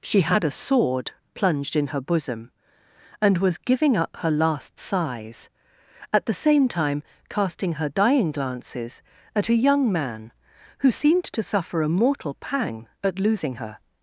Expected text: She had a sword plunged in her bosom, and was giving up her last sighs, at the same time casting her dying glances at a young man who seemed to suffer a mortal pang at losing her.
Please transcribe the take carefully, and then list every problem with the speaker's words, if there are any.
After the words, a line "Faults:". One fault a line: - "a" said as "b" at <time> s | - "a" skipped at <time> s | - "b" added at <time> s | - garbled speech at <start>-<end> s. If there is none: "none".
She had a sword plunged in her bosom, and was giving up her last sighs, at the same time casting her dying glances at a young man who seemed to suffer a mortal pang at losing her.
Faults:
none